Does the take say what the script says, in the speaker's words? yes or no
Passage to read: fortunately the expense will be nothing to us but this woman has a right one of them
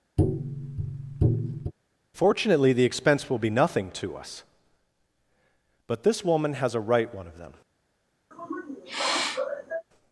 yes